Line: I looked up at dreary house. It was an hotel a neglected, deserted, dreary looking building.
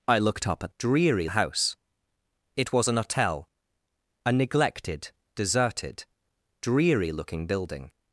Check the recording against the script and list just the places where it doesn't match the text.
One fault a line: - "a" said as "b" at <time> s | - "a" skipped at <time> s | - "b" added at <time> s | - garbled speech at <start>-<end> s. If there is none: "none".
none